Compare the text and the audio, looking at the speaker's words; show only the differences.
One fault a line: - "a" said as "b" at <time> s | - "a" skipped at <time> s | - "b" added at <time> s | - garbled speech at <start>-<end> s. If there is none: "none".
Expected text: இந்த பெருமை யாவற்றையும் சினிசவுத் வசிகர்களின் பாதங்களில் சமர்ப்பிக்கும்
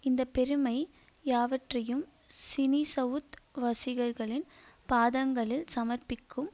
none